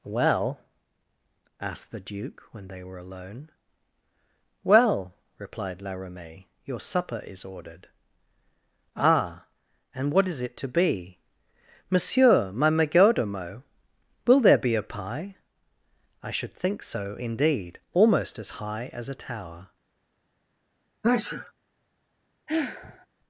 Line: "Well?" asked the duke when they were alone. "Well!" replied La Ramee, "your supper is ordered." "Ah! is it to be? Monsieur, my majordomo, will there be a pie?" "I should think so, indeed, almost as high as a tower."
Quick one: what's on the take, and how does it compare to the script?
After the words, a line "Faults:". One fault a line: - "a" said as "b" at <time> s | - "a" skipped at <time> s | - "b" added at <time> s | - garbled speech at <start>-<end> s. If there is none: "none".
"Well?" asked the duke when they were alone. "Well!" replied La Ramee, "your supper is ordered." "Ah! and what is it to be? Monsieur, my majordomo, will there be a pie?" "I should think so, indeed, almost as high as a tower."
Faults:
- "and what" added at 9.9 s